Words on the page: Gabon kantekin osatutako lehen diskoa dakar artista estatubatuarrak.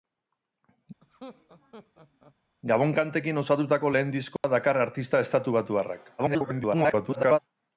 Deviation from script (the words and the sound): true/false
true